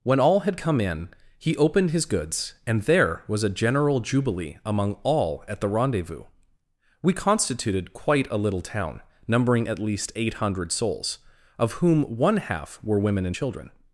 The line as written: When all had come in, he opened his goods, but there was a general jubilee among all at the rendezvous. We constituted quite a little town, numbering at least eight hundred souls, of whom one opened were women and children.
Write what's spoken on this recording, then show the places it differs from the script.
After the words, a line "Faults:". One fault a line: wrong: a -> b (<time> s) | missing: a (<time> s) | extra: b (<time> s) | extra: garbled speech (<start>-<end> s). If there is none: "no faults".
When all had come in, he opened his goods, and there was a general jubilee among all at the rendezvous. We constituted quite a little town, numbering at least eight hundred souls, of whom one half were women and children.
Faults:
wrong: but -> and (2.6 s)
wrong: opened -> half (12.4 s)